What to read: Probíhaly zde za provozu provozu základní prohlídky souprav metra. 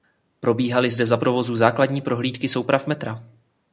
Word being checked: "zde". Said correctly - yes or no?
yes